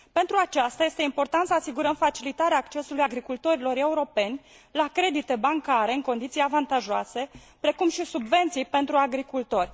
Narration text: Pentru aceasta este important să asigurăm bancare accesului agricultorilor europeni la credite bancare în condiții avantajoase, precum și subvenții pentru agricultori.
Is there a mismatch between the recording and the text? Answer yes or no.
yes